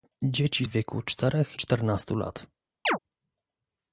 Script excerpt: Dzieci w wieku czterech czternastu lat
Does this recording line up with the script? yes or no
yes